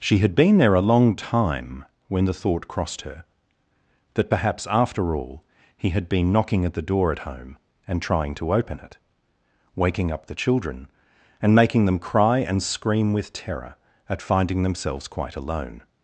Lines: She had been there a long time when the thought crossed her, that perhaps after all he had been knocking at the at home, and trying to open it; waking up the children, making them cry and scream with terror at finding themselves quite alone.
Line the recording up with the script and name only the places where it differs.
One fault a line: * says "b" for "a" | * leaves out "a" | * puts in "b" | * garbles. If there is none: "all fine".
* puts in "door"
* puts in "and"